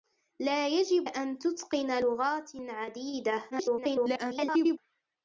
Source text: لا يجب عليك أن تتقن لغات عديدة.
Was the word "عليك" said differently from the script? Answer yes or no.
yes